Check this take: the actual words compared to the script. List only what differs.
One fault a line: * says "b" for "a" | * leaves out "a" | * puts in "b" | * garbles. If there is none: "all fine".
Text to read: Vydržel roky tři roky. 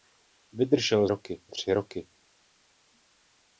all fine